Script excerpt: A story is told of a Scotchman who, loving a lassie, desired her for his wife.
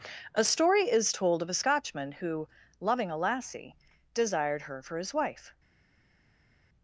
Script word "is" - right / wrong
right